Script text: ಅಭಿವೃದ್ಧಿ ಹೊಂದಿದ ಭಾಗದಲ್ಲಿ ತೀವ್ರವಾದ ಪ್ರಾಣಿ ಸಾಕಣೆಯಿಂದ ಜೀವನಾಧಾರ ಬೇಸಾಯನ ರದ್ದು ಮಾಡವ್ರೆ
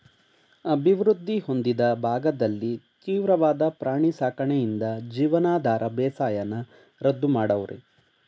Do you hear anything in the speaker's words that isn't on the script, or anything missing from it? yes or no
no